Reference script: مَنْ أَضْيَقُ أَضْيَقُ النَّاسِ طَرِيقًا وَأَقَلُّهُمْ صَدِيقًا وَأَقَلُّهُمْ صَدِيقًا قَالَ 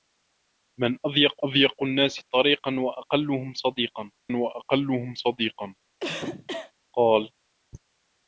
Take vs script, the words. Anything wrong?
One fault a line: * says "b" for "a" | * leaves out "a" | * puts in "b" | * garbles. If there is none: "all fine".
all fine